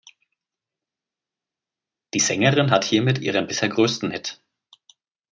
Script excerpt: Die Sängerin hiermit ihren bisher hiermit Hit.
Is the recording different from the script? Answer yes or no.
yes